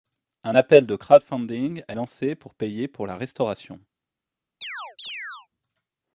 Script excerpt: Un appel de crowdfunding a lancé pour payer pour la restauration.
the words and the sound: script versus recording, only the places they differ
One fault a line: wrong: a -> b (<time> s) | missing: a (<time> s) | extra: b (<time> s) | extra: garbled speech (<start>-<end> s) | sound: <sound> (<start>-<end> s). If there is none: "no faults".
sound: chirp (4.6-5.5 s)